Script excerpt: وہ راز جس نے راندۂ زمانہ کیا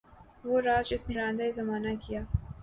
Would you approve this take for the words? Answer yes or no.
yes